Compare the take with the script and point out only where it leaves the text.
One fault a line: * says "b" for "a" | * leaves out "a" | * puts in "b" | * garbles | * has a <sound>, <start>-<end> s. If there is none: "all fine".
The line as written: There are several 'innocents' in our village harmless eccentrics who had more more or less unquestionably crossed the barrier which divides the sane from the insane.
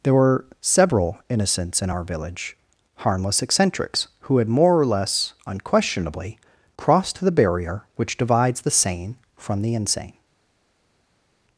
* says "were" for "are"
* leaves out "more"